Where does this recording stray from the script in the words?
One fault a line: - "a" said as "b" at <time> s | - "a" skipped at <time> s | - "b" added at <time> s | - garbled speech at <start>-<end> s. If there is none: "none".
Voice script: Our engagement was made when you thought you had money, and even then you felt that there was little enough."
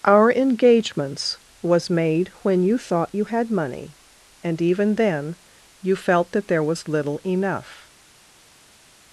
- "engagement" said as "engagements" at 0.3 s